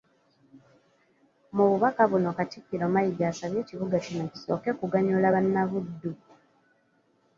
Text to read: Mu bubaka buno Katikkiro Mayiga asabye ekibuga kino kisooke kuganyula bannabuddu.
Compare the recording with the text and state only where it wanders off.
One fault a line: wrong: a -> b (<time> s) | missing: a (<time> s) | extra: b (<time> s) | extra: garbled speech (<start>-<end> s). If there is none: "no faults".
no faults